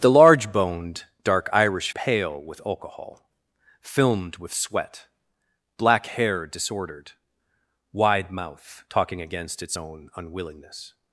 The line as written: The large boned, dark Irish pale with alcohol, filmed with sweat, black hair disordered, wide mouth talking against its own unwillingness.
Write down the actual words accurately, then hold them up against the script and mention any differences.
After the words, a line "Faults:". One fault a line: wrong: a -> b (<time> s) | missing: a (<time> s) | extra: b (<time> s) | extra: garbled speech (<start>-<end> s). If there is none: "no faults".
The large boned, dark Irish pale with alcohol, filmed with sweat, black hair disordered, wide mouth talking against its own unwillingness.
Faults:
no faults